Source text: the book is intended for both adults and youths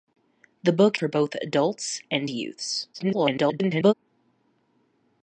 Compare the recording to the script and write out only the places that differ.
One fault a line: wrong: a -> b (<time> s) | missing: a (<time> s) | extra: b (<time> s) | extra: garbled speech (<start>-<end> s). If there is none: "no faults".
missing: is intended (1.0 s)
extra: garbled speech (2.9-3.9 s)